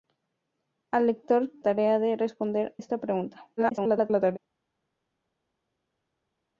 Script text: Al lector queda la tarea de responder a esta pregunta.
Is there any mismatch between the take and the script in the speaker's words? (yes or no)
yes